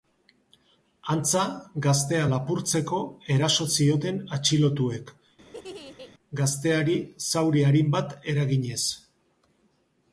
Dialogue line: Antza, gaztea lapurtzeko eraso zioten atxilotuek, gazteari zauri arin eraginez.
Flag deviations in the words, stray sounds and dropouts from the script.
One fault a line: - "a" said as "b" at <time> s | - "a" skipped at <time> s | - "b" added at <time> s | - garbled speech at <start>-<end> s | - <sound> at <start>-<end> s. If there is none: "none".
- laugh at 5.4-6.1 s
- "bat" added at 8.0 s